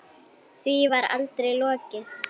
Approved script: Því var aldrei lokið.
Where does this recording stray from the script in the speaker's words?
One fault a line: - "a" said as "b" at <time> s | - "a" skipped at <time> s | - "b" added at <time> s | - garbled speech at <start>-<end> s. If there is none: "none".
none